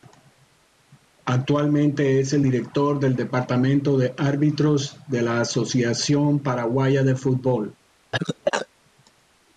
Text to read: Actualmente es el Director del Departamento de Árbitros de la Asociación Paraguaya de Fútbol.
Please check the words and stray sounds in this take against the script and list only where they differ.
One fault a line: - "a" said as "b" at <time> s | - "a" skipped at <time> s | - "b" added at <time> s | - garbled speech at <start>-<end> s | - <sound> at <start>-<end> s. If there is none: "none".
- cough at 8.1-8.7 s